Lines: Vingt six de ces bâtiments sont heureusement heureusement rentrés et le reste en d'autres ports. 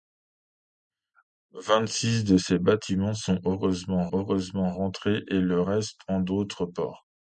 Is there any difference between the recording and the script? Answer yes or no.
no